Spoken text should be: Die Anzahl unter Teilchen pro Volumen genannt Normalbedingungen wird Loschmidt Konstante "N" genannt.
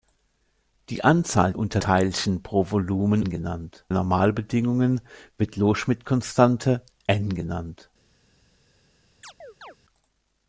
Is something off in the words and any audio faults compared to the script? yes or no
yes